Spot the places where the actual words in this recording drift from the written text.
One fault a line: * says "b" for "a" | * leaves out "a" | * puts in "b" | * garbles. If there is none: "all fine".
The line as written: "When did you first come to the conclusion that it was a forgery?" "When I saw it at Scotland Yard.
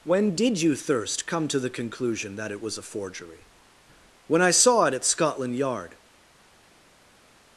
* says "thirst" for "first"